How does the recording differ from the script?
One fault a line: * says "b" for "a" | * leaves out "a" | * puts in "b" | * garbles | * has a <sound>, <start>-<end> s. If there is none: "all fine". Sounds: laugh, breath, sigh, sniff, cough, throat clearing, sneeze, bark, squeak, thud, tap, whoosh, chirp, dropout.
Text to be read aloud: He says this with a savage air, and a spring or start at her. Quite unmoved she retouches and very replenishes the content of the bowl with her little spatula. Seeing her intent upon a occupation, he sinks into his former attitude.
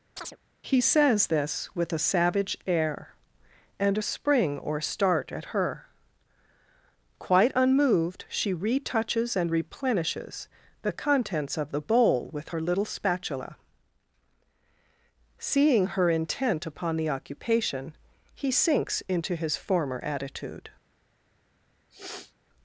* has a chirp, 0.2-0.4 s
* leaves out "very"
* says "contents" for "content"
* says "the" for "a"
* has a sniff, 21.9-22.3 s